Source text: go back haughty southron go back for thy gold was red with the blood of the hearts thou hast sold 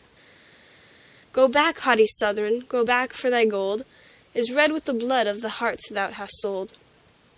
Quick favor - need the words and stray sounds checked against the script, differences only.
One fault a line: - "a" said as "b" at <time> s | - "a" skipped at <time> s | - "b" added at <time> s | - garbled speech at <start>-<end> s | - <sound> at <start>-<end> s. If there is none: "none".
- "was" said as "is" at 4.3 s